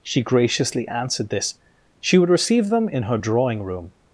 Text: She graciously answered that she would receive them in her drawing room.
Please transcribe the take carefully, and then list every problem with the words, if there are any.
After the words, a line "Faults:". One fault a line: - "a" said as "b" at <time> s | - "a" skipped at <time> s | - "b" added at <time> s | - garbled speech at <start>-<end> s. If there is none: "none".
She graciously answered this she would receive them in her drawing room.
Faults:
- "that" said as "this" at 1.3 s